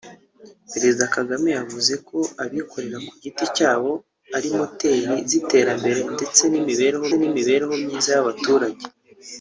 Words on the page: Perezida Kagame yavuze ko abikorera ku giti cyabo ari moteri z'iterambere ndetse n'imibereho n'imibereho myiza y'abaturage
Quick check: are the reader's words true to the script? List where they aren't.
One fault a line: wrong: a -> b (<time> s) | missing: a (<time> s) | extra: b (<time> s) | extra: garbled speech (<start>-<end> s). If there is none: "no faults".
no faults